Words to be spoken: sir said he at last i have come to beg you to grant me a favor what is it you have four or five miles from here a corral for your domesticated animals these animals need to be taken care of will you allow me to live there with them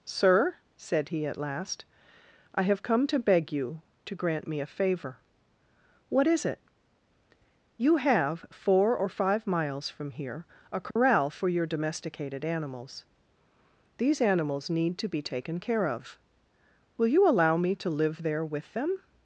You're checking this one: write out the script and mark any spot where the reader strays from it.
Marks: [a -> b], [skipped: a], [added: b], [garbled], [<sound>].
sir said he at last i have come to beg you to grant me a favor what is it you have four or five miles from here a corral [dropout] for your domesticated animals these animals need to be taken care of will you allow me to live there with them